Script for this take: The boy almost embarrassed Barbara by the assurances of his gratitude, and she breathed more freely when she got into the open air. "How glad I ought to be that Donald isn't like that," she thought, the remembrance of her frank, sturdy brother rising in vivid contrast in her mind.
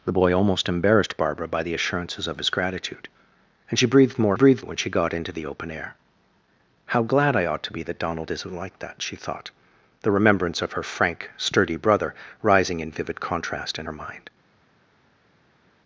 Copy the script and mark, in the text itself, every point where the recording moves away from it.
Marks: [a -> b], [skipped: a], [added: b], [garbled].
The boy almost embarrassed Barbara by the assurances of his gratitude, and she breathed more [freely -> breathed] when she got into the open air. "How glad I ought to be that Donald isn't like that," she thought, the remembrance of her frank, sturdy brother rising in vivid contrast in her mind.